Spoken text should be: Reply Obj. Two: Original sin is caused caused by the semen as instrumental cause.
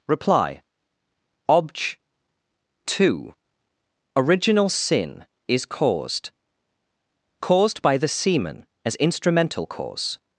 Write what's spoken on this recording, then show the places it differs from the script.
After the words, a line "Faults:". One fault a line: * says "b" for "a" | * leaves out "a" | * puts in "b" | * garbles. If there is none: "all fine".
Reply Obj. Two: Original sin is caused caused by the semen as instrumental cause.
Faults:
all fine